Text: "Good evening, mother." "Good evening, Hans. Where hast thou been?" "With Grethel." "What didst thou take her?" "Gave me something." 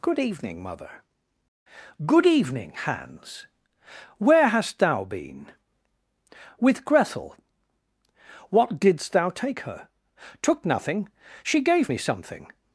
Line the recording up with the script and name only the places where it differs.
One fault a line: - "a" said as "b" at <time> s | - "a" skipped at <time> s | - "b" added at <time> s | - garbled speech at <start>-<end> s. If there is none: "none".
- "Took nothing she" added at 10.4 s